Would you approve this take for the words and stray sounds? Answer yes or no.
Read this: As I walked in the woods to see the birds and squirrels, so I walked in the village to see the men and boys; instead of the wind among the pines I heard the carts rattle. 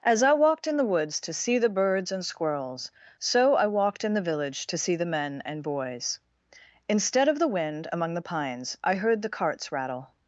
yes